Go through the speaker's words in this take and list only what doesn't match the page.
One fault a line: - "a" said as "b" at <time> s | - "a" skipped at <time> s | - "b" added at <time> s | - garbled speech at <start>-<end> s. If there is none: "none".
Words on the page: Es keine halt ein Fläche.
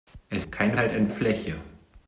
none